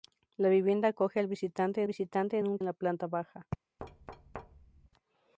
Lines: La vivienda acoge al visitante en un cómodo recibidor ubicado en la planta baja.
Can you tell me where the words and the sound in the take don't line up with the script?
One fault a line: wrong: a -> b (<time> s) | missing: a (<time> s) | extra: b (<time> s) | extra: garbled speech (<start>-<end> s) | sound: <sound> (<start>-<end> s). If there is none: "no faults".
extra: visitante (1.8 s)
missing: cómodo recibidor ubicado (2.6 s)
sound: thud (3.8-4.9 s)